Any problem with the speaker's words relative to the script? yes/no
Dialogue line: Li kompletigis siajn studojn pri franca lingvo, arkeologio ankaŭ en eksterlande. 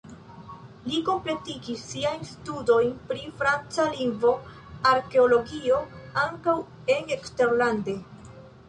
no